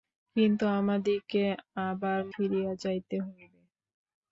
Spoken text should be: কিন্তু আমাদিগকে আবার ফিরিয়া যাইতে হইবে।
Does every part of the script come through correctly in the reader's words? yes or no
yes